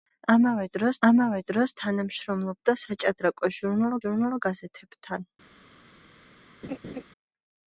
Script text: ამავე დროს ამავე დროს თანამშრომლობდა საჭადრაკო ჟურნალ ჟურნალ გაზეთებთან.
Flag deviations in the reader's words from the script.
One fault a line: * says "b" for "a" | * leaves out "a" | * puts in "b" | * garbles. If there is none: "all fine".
all fine